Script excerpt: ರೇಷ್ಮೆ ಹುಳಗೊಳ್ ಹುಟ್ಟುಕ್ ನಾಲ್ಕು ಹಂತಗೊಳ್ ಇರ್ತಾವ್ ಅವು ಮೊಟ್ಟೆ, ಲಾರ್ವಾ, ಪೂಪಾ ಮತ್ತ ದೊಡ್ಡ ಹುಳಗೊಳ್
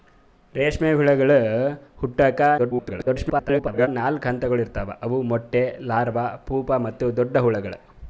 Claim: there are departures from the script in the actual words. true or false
true